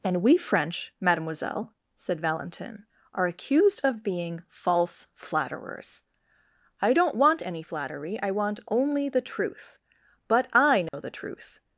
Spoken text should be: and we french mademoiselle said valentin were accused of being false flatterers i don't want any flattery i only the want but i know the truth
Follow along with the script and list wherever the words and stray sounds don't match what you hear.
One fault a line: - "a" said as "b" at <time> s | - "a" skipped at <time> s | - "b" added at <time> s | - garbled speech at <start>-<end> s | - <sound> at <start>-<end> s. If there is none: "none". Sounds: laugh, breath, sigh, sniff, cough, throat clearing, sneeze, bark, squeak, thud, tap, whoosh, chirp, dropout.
- "were" said as "are" at 3.1 s
- "want" added at 8.3 s
- "want" said as "truth" at 9.2 s
- dropout at 10.9-10.9 s